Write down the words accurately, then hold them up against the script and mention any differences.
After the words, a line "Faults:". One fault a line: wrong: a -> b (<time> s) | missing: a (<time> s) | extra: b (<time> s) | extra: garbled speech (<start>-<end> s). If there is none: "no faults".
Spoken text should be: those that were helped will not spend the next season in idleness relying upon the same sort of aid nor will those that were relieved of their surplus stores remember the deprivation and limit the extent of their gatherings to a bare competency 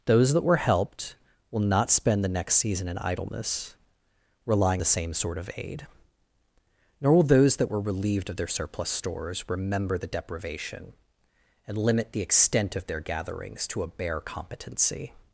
those that were helped will not spend the next season in idleness relying the same sort of aid nor will those that were relieved of their surplus stores remember the deprivation and limit the extent of their gatherings to a bare competency
Faults:
missing: upon (4.8 s)